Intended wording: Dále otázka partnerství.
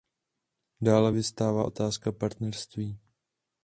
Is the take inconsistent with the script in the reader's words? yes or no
yes